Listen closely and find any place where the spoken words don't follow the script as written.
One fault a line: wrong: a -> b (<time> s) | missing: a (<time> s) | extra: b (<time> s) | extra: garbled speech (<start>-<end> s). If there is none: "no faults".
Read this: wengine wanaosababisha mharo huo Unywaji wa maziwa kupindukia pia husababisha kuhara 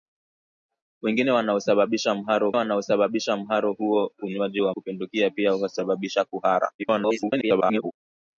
extra: wanaosababisha mharo (2.5 s)
missing: maziwa (4.7 s)
extra: garbled speech (6.8-8.0 s)